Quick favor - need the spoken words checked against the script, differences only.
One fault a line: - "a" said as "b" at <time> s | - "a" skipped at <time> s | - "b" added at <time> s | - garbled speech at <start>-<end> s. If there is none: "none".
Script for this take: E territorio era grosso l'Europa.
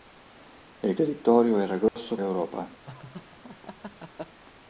none